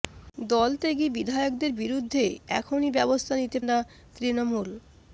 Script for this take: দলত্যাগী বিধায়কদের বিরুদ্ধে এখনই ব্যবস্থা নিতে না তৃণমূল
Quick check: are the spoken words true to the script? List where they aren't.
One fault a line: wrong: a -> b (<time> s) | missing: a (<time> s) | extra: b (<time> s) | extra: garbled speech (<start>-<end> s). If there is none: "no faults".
no faults